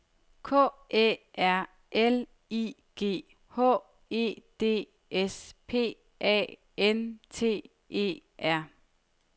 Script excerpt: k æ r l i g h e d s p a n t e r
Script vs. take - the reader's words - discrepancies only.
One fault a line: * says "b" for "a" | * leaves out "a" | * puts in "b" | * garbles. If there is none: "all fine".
all fine